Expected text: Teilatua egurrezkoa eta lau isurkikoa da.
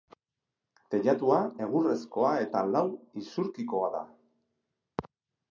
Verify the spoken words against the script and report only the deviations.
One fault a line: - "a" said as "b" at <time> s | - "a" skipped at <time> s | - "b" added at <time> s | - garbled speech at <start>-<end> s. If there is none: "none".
none